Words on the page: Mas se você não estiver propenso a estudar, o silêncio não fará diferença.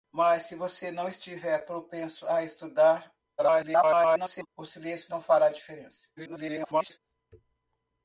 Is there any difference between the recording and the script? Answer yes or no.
yes